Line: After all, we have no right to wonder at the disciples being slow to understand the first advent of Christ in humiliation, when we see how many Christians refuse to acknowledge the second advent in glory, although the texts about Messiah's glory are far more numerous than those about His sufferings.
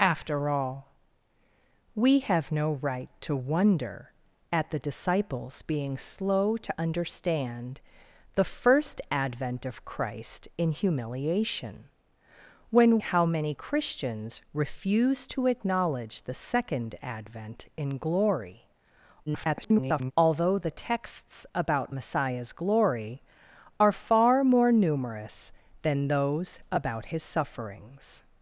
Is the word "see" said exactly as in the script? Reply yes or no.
no